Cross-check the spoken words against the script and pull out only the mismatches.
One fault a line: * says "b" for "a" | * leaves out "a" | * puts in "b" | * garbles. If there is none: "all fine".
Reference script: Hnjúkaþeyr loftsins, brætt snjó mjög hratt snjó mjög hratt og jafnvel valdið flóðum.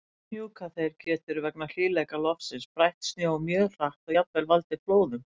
* says "getur vegna hlýleika loftsins brætt" for "loftsins brætt snjó mjög hratt"